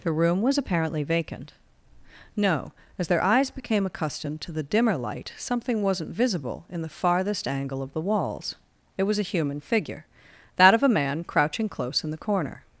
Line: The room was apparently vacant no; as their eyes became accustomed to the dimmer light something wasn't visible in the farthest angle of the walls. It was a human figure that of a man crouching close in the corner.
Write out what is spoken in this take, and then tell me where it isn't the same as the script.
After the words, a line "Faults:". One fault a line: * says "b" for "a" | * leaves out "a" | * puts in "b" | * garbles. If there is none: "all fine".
The room was apparently vacant no; as their eyes became accustomed to the dimmer light something wasn't visible in the farthest angle of the walls. It was a human figure that of a man crouching close in the corner.
Faults:
all fine